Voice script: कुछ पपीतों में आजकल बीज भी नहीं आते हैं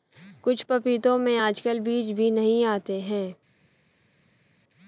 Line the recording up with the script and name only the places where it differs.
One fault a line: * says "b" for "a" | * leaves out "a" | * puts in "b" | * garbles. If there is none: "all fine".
all fine